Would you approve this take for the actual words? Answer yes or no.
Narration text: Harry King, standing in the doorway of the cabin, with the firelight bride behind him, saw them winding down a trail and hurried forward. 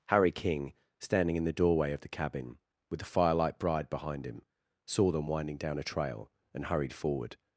yes